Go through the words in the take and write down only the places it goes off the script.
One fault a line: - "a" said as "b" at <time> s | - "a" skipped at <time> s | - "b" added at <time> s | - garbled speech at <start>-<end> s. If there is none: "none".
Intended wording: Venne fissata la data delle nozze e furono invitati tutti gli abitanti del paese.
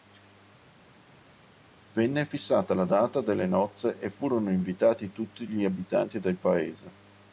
none